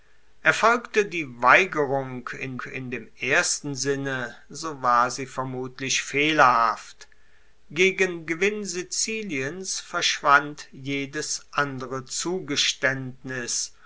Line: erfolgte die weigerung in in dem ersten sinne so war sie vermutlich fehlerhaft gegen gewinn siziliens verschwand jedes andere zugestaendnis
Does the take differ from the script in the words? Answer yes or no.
no